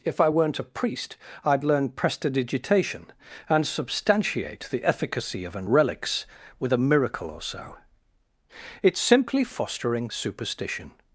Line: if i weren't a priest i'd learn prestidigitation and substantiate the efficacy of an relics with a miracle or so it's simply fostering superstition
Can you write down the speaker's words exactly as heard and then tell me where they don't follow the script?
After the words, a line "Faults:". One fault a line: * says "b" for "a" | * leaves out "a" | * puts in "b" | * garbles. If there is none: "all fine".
if i weren't a priest i'd learn prestidigitation and substantiate the efficacy of an relics with a miracle or so it's simply fostering superstition
Faults:
all fine